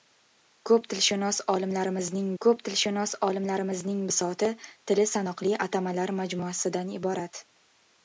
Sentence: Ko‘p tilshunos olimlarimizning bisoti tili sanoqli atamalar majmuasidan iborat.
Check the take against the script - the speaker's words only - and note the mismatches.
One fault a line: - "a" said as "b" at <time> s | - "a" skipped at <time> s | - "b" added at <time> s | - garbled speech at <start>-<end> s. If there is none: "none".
- "ko‘p tilshunos olimlarimizning" added at 2.4 s